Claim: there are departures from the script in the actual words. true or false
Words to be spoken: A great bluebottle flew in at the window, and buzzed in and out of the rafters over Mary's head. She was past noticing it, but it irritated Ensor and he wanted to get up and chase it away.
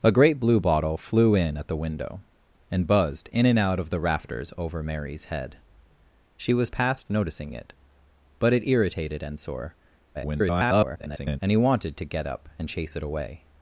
true